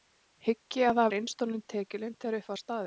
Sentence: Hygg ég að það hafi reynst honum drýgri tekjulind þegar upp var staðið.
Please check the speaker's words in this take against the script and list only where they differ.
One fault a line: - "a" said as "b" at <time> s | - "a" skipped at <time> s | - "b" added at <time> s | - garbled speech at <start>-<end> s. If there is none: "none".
- "hafi" skipped at 1.1 s
- "drýgri" skipped at 1.6 s